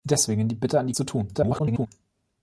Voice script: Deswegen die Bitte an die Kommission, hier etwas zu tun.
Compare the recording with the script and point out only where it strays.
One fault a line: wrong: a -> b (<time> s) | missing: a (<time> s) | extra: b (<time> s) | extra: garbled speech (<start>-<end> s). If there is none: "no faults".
missing: Kommission hier etwas (0.9 s)
extra: garbled speech (1.3-1.9 s)